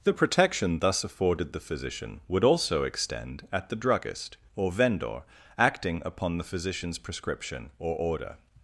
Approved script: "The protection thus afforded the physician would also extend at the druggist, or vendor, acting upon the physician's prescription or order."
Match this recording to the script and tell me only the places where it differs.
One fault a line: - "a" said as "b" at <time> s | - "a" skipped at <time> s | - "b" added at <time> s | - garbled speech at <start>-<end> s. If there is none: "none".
none